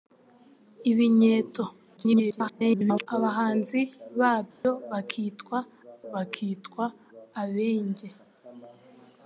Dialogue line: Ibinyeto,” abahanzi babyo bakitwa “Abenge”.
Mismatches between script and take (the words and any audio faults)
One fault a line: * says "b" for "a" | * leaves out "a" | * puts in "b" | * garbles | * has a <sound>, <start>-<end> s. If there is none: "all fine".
* garbles
* has a dropout, 4.5-4.6 s
* puts in "bakitwa"